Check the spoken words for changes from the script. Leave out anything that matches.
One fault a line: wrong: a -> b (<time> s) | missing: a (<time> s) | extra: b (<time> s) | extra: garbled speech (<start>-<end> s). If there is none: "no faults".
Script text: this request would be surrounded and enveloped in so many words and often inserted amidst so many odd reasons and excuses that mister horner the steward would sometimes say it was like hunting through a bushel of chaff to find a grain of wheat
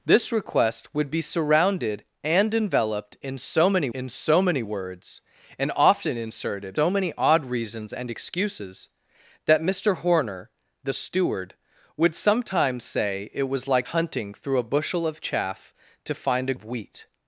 extra: in so many (3.9 s)
missing: amidst (6.8 s)
missing: grain (16.5 s)